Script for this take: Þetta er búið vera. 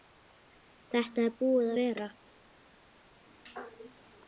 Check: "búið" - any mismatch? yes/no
no